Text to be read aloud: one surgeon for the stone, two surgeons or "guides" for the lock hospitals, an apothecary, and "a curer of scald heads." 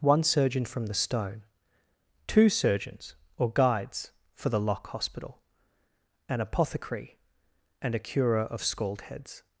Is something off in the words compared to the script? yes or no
yes